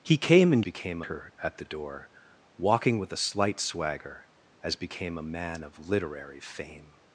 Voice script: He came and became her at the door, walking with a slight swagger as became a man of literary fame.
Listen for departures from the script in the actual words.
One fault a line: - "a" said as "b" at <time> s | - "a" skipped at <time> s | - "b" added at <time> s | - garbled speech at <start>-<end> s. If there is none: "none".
none